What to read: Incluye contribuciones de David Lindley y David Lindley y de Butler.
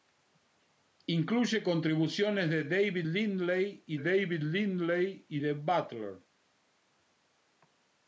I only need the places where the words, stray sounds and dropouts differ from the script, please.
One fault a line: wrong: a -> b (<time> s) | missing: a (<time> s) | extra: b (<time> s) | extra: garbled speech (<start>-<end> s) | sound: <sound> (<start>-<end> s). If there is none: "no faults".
no faults